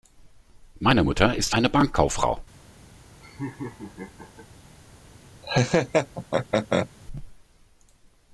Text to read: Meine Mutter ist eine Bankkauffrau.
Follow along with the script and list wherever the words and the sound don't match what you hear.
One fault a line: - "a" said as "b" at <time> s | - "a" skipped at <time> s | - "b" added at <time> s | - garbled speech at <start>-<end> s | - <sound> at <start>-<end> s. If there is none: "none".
- laugh at 3.2-4.5 s
- laugh at 5.4-6.9 s